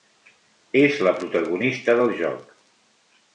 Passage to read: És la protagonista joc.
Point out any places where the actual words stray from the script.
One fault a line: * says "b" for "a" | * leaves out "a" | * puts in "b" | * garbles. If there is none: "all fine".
* puts in "del"